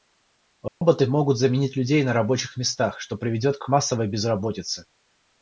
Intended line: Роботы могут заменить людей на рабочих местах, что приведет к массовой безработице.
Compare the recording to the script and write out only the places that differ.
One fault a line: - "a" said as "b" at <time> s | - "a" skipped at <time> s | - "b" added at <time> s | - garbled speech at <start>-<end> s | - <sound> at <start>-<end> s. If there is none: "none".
- dropout at 0.7-0.8 s
- "к" added at 3.6 s